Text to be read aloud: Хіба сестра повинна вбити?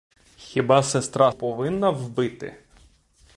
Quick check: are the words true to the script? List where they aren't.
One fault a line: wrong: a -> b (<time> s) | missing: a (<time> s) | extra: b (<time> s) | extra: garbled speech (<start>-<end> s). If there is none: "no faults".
no faults